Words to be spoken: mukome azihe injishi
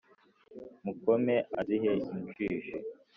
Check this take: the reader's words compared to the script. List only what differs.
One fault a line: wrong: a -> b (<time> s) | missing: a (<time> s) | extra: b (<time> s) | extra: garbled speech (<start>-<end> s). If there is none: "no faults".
no faults